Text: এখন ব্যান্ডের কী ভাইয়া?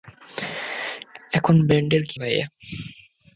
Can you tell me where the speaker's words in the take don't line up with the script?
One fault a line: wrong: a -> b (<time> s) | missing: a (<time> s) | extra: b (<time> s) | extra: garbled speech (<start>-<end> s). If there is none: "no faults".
no faults